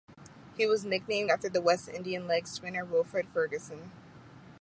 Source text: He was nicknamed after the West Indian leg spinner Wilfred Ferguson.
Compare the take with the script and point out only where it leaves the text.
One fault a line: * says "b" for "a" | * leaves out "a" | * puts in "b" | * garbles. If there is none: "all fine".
all fine